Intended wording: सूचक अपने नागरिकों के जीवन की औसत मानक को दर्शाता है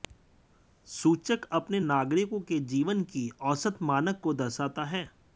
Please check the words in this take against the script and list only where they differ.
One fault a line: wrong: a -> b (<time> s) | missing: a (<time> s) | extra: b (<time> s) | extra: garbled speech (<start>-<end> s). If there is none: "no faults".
no faults